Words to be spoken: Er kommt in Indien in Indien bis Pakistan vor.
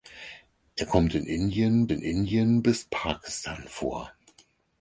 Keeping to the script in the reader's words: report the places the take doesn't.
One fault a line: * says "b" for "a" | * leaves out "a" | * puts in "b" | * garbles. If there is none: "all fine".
all fine